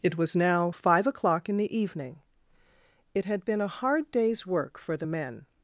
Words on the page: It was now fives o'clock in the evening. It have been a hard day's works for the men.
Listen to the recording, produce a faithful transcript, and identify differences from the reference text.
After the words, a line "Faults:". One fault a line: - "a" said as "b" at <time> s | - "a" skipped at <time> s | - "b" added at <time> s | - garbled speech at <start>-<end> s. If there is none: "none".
It was now five o'clock in the evening. It had been a hard day's work for the men.
Faults:
- "fives" said as "five" at 0.7 s
- "have" said as "had" at 3.2 s
- "works" said as "work" at 4.4 s